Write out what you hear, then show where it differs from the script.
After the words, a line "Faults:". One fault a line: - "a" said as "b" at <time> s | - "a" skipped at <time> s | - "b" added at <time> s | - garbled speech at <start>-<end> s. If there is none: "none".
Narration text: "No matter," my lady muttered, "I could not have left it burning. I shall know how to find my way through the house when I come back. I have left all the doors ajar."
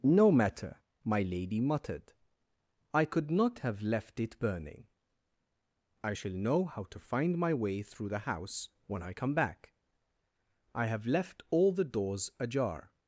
"No matter," my lady muttered, "I could not have left it burning. I shall know how to find my way through the house when I come back. I have left all the doors ajar."
Faults:
none